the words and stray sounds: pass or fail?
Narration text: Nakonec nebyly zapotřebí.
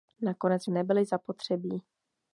pass